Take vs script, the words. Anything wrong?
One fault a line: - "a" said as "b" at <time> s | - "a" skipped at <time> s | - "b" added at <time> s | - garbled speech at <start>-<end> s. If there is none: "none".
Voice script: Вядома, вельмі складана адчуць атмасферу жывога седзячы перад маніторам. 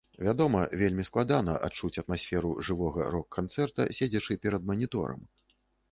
- "рок канцэрта" added at 3.2 s